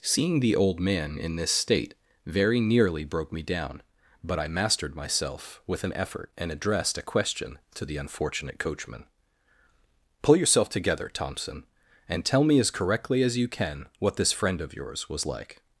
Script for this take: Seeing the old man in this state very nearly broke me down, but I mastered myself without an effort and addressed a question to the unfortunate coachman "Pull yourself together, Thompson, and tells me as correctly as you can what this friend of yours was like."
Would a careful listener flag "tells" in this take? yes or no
yes